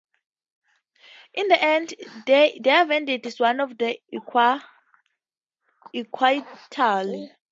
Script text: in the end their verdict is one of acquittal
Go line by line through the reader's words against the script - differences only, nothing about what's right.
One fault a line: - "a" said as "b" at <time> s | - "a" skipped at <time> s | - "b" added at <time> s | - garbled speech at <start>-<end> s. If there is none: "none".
none